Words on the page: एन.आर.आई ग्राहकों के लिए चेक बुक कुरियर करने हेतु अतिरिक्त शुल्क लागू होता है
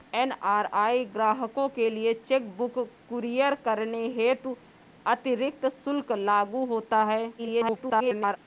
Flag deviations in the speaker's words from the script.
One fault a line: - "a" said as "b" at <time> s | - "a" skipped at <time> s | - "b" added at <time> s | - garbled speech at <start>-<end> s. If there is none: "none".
- garbled speech at 7.4-8.4 s